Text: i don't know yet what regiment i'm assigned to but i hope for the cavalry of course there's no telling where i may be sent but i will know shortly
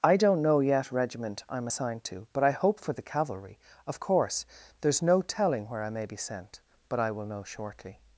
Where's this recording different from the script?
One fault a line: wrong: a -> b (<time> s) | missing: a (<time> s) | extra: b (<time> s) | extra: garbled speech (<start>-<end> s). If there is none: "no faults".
missing: what (0.9 s)